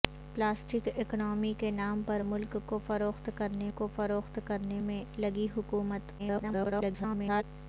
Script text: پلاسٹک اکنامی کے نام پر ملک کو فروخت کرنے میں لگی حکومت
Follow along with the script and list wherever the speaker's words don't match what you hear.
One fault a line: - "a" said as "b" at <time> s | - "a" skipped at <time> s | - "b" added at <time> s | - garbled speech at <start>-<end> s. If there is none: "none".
- "کو فروخت کرنے" added at 3.8 s
- garbled speech at 6.2-7.4 s